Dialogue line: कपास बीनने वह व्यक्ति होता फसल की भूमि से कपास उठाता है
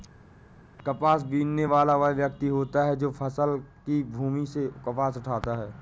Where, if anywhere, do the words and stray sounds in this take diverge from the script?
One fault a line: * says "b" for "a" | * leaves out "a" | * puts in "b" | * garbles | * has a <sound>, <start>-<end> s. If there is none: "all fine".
* puts in "वाला"
* puts in "है जो"